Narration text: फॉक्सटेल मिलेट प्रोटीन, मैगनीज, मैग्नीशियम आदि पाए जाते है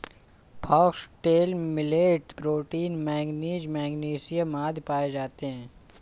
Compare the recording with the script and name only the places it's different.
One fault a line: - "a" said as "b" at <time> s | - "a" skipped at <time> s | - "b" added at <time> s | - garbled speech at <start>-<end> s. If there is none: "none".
none